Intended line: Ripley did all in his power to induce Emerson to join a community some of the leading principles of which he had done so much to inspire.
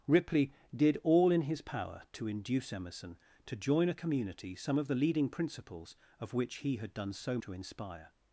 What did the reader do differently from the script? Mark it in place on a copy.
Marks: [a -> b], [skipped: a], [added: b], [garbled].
Ripley did all in his power to induce Emerson to join a community some of the leading principles of which he had done so [skipped: much] to inspire.